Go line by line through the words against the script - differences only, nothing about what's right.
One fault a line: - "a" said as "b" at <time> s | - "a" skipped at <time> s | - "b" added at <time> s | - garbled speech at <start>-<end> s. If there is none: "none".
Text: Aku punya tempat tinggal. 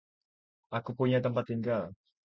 none